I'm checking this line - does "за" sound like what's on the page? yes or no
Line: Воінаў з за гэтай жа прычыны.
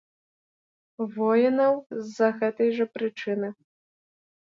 yes